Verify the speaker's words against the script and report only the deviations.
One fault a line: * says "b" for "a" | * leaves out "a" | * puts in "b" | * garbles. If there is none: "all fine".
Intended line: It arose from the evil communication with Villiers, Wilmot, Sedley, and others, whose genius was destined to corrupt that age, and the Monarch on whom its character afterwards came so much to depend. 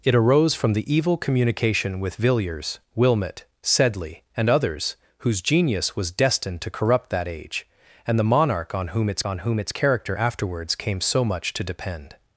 * puts in "on whom its"